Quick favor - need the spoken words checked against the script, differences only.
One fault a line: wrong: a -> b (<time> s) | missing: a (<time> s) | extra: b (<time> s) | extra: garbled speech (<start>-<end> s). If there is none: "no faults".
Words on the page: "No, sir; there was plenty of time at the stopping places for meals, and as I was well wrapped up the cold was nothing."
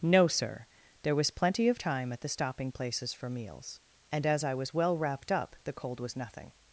no faults